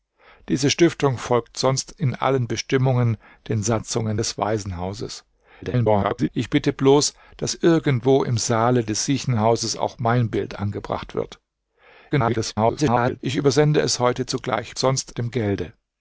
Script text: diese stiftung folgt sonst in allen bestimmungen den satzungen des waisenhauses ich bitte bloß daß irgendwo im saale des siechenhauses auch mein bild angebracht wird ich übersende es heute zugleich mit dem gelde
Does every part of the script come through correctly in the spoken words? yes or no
no